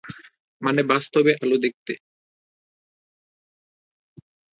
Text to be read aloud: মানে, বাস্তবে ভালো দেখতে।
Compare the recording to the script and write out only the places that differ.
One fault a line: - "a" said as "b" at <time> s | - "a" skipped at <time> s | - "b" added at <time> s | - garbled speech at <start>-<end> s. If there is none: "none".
none